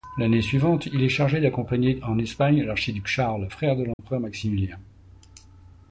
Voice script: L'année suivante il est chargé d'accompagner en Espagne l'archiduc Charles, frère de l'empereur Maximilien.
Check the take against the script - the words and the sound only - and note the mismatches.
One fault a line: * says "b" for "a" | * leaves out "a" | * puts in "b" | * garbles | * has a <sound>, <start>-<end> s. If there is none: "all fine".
* has a dropout, 3.9-4.0 s